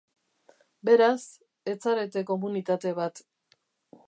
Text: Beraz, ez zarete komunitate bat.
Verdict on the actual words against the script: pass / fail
pass